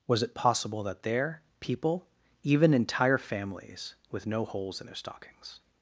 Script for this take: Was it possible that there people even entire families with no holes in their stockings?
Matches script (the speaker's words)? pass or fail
pass